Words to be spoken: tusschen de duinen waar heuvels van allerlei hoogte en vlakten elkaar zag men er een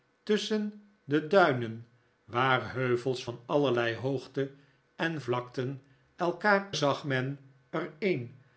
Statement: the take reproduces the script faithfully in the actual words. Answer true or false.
true